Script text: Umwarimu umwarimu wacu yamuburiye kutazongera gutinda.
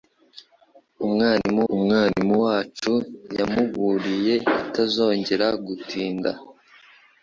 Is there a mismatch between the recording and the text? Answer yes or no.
no